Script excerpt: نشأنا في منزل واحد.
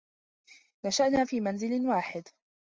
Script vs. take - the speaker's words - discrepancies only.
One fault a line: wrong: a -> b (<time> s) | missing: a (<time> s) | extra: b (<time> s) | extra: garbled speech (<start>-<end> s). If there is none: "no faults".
no faults